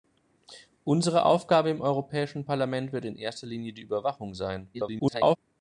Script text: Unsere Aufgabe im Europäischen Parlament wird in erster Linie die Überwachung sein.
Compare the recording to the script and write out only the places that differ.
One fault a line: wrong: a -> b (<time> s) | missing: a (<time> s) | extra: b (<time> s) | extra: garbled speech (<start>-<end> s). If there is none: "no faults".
extra: garbled speech (4.7-5.4 s)